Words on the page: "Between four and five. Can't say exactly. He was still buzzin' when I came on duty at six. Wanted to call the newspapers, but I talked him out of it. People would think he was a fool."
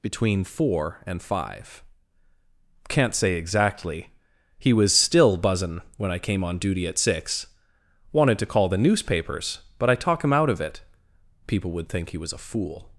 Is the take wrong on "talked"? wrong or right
wrong